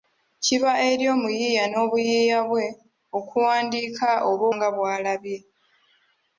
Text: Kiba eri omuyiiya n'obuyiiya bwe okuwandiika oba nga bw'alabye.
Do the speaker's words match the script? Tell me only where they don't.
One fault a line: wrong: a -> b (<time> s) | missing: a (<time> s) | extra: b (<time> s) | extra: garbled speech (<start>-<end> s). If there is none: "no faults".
no faults